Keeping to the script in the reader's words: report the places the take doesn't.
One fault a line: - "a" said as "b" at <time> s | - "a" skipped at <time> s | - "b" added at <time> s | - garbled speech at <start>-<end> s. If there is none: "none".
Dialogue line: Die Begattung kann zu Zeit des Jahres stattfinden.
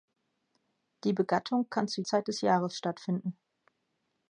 none